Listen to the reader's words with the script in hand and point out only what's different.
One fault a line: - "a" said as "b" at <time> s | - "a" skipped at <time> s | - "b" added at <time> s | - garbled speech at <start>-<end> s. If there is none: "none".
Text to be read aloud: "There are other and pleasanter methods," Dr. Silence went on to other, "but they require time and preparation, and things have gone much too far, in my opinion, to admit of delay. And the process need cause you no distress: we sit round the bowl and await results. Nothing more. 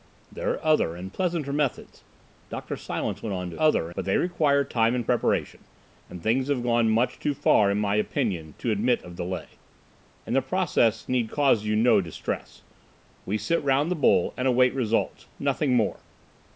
none